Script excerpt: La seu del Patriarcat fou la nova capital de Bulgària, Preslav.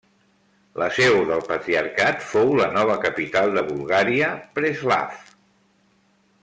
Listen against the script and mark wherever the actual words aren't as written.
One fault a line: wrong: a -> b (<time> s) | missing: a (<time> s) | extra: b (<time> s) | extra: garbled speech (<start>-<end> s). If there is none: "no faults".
no faults